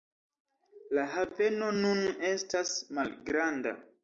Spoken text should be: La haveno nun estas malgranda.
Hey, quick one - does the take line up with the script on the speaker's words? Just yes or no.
yes